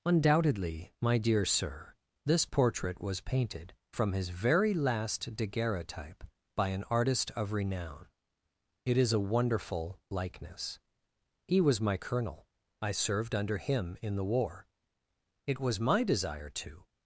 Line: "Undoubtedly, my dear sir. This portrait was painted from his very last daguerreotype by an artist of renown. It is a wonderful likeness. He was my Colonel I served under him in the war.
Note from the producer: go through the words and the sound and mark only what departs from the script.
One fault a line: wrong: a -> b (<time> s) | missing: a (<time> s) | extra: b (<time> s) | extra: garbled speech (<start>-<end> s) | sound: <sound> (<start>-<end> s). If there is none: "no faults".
extra: It was my desire to (15.4 s)